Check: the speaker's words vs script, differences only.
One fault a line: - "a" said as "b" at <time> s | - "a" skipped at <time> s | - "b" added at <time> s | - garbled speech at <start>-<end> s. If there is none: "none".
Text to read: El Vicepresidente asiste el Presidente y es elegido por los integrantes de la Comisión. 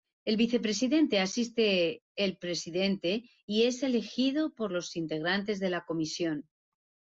none